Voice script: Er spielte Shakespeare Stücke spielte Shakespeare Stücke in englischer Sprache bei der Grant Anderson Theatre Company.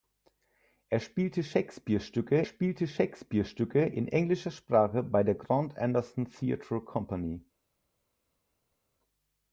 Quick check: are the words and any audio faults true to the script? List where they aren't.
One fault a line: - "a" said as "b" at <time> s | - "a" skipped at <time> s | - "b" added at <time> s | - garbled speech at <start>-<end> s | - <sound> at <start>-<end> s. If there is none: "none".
none